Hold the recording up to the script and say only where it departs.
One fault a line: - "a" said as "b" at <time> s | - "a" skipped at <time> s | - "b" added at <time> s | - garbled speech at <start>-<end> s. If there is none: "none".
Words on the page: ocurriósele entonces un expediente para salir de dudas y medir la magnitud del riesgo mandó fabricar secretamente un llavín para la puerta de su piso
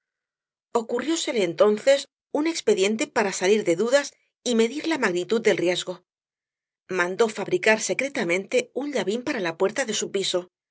none